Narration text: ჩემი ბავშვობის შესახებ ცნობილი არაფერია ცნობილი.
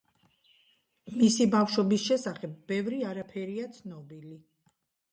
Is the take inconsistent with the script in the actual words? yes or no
yes